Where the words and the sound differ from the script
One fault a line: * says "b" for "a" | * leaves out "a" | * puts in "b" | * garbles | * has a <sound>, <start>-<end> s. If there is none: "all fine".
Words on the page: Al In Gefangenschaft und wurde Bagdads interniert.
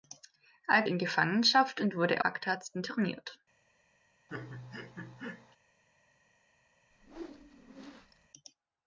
* has a laugh, 4.3-5.6 s
* has a whoosh, 6.9-8.3 s